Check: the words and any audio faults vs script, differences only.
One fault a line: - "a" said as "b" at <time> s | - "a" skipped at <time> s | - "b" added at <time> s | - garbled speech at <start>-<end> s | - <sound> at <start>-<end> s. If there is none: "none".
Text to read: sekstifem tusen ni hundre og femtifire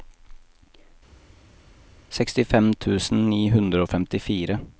none